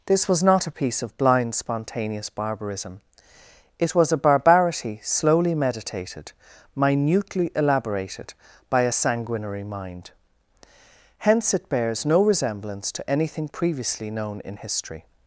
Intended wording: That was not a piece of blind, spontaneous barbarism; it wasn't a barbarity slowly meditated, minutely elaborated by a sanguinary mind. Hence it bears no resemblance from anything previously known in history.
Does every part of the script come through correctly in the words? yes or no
no